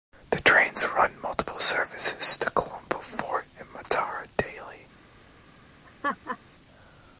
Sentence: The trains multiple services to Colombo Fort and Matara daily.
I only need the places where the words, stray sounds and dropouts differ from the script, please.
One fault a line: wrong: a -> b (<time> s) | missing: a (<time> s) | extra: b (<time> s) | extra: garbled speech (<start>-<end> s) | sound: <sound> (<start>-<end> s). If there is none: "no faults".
extra: run (1.0 s)
sound: laugh (5.9-6.4 s)